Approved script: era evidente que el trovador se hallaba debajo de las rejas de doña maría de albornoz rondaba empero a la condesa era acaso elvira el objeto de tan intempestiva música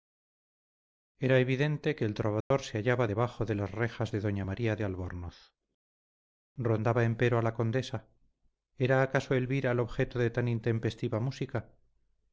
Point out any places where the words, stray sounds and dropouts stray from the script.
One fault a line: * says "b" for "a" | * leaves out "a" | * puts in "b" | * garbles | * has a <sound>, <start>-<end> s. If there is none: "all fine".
* has a dropout, 2.4-2.5 s